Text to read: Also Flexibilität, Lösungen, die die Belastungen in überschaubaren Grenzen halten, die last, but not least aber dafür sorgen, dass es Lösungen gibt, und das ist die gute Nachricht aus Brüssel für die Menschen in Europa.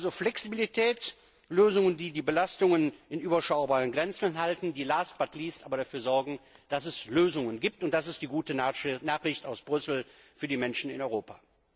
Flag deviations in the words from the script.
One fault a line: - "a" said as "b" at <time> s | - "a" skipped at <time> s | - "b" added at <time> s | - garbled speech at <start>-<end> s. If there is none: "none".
none